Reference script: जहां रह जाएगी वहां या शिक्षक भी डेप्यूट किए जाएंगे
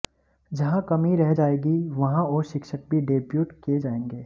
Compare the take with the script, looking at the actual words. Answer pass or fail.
fail